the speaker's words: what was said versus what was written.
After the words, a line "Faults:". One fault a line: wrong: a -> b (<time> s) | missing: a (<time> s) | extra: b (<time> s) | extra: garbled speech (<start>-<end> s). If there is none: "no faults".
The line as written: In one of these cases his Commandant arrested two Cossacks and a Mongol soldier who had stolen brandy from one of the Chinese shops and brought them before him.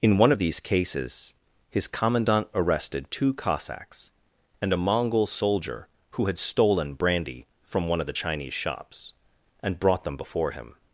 In one of these cases his Commandant arrested two Cossacks and a Mongol soldier who had stolen brandy from one of the Chinese shops and brought them before him.
Faults:
no faults